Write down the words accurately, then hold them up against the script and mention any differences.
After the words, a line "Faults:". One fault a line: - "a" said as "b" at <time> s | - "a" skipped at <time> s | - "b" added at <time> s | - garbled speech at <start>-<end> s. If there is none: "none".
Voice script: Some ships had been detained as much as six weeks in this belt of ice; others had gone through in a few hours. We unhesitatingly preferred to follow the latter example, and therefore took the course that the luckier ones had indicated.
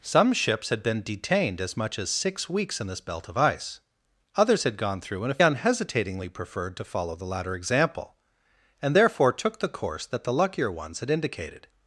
Some ships had been detained as much as six weeks in this belt of ice; others had gone through in a unhesitatingly preferred to follow the latter example, and therefore took the course that the luckier ones had indicated.
Faults:
- "few hours We" skipped at 5.4 s